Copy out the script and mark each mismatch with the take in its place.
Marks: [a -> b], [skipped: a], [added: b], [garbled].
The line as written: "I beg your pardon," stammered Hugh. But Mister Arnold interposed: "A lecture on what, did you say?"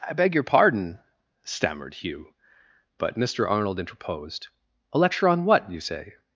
"I beg your pardon," stammered Hugh. But Mister Arnold interposed: "A lecture on what, [skipped: did] you say?"